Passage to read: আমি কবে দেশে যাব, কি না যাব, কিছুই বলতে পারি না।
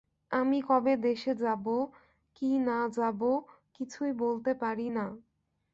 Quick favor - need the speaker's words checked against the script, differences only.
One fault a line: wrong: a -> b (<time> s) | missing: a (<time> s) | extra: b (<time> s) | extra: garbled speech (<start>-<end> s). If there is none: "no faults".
no faults